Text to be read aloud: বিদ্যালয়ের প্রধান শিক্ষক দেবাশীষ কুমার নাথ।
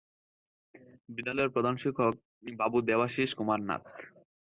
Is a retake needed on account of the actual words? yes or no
yes